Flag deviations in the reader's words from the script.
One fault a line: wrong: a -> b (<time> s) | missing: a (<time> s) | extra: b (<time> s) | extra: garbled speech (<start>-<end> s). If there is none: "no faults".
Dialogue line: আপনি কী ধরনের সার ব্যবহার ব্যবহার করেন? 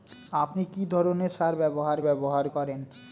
no faults